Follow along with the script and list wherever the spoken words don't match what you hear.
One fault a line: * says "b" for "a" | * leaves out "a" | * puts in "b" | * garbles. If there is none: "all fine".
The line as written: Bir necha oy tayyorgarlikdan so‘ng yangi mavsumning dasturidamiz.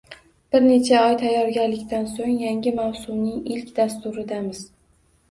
* puts in "ilk"